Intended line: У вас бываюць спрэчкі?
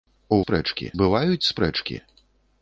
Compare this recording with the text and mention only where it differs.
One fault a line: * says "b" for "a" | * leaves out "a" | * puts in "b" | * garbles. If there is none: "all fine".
* says "спрэчкі" for "вас"